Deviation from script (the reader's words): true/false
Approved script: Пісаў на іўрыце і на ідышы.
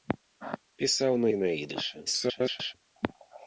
true